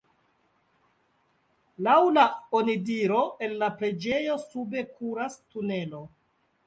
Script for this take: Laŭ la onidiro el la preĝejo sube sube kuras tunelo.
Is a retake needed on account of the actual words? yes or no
yes